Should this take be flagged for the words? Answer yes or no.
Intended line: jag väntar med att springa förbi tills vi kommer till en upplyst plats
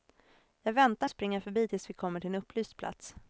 yes